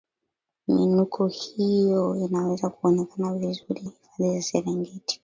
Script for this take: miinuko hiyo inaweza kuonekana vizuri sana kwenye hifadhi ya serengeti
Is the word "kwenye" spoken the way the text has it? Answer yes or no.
no